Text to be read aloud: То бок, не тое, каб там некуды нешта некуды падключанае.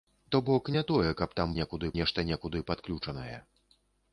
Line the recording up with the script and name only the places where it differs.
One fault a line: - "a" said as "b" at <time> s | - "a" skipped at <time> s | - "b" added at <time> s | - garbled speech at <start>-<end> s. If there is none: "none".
none